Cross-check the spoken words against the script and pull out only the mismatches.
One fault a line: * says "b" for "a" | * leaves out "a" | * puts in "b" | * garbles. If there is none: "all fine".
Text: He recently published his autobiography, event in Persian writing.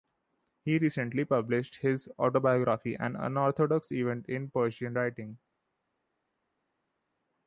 * puts in "an unorthodox"